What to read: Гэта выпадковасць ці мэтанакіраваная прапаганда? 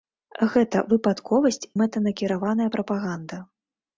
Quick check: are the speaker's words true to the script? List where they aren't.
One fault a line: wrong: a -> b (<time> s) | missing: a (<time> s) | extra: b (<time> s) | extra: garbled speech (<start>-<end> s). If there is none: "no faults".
missing: ці (1.6 s)